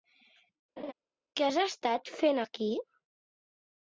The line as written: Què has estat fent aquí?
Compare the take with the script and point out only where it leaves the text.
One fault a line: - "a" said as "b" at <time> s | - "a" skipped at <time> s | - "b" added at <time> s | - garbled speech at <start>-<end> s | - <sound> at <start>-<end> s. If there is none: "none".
- laugh at 0.8-0.9 s